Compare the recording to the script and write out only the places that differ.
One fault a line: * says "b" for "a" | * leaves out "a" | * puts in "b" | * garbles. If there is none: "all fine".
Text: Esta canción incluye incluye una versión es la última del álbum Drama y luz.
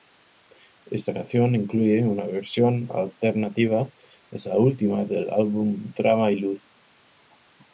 * leaves out "incluye"
* puts in "alternativa"